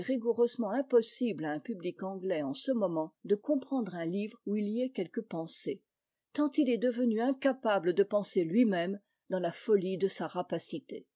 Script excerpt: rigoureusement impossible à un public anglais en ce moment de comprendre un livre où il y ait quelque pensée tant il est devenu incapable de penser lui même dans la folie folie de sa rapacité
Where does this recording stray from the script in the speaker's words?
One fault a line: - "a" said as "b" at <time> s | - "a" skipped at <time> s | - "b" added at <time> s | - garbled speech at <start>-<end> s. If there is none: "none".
- "folie" skipped at 10.0 s